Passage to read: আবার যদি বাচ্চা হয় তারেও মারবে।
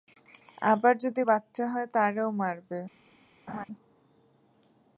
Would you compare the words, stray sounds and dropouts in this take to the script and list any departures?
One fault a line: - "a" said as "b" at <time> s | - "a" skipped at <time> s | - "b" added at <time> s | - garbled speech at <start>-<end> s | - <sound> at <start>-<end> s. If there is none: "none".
- laugh at 3.5-3.7 s